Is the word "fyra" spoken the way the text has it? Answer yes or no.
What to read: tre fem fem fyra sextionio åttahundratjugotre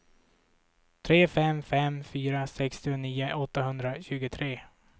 yes